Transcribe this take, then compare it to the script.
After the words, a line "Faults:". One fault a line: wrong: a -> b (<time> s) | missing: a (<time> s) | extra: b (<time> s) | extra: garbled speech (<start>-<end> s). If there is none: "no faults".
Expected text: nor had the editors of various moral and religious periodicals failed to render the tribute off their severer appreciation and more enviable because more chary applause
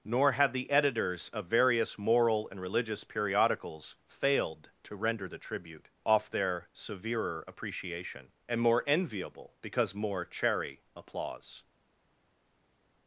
nor had the editors of various moral and religious periodicals failed to render the tribute off their severer appreciation and more enviable because more chary applause
Faults:
no faults